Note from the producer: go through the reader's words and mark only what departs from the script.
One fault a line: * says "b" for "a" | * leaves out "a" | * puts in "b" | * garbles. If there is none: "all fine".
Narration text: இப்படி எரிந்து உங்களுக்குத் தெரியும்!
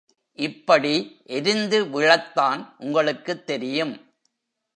* puts in "விழத்தான்"